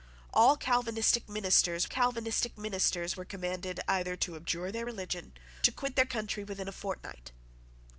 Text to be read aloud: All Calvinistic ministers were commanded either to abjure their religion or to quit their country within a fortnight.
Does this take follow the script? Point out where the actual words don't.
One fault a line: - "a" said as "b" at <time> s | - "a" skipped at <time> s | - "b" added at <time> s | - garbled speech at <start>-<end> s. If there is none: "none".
- "Calvinistic ministers" added at 1.9 s
- "or" skipped at 5.3 s